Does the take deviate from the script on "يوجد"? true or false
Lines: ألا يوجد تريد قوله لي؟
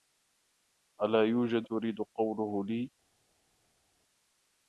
false